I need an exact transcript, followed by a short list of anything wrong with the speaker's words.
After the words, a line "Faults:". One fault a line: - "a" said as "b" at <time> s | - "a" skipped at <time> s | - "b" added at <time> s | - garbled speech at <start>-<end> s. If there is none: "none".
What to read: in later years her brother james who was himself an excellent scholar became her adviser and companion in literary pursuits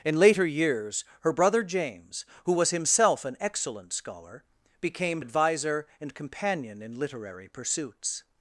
in later years her brother james who was himself an excellent scholar became adviser and companion in literary pursuits
Faults:
- "her" skipped at 5.2 s